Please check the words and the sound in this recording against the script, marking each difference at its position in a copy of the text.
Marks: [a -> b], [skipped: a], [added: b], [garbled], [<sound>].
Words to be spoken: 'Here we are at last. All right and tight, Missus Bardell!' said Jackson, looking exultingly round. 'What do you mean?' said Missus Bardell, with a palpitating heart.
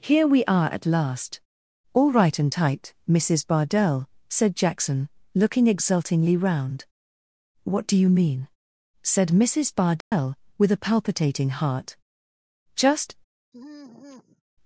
'Here we are at last. All right and tight, Missus Bardell!' said Jackson, looking exultingly round. 'What do you mean?' said Missus Bardell, [dropout] with a palpitating heart. [added: Just] [sigh]